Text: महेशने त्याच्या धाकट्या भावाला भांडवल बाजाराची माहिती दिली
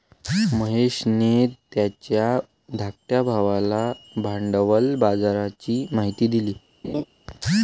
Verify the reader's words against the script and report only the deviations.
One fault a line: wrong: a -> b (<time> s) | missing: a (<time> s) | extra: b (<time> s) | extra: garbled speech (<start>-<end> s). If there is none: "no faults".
no faults